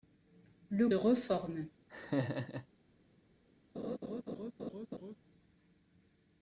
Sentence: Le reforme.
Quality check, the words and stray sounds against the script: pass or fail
fail